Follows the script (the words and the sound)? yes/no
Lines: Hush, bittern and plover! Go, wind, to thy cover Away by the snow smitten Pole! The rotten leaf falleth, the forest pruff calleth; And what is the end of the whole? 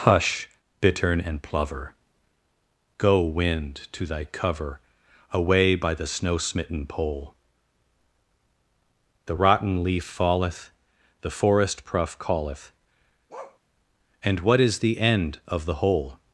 no